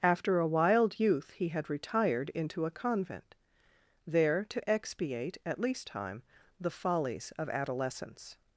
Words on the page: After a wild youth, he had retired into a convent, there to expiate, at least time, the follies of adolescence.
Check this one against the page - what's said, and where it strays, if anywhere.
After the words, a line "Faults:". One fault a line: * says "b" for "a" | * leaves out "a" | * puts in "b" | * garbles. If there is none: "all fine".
After a wild youth, he had retired into a convent, there to expiate, at least time, the follies of adolescence.
Faults:
all fine